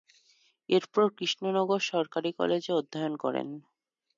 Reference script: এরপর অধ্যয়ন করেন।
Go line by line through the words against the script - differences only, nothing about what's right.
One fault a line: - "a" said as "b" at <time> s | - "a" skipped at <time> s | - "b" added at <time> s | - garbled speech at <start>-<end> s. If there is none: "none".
- "কৃষ্ণনগর সরকারি কলেজে" added at 1.2 s